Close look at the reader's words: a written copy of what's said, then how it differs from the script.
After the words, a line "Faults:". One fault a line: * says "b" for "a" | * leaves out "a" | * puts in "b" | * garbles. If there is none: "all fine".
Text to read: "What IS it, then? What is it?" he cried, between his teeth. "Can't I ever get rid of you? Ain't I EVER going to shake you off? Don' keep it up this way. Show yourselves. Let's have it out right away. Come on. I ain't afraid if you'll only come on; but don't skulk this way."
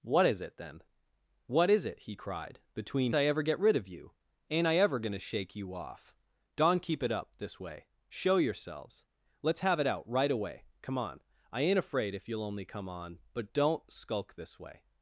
"What IS it, then? What is it?" he cried, between I ever get rid of you? Ain't I EVER going to shake you off? Don' keep it up this way. Show yourselves. Let's have it out right away. Come on. I ain't afraid if you'll only come on; but don't skulk this way."
Faults:
* leaves out "his teeth Can't"